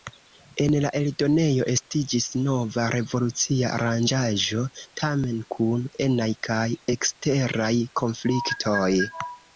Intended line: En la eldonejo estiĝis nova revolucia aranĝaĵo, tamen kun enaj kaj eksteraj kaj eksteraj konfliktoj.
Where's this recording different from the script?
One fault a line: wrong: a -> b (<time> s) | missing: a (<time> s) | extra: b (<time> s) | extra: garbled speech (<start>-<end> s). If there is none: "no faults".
missing: kaj eksteraj (7.7 s)